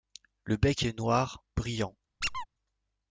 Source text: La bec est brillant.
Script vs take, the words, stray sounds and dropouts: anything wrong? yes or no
yes